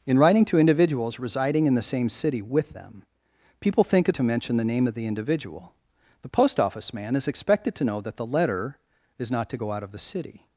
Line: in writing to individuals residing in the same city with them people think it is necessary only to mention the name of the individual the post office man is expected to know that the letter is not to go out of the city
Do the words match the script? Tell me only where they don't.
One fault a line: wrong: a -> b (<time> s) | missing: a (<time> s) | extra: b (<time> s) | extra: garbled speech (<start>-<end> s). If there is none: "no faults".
missing: is necessary only (4.2 s)